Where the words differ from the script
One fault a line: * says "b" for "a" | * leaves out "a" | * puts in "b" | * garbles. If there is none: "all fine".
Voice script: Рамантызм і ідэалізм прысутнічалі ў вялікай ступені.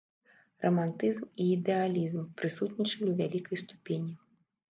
all fine